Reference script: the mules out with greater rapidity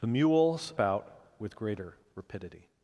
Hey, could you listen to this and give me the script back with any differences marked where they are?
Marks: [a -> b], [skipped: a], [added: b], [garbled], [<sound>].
the mules out with greater rapidity